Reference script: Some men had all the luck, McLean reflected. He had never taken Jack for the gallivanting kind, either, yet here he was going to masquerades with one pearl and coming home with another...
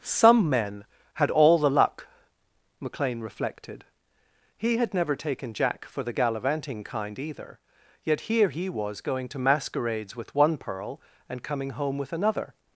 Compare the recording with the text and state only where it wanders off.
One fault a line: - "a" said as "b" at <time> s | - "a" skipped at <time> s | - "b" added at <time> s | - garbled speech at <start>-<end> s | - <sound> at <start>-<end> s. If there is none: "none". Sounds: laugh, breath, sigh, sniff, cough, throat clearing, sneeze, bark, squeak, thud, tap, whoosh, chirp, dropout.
none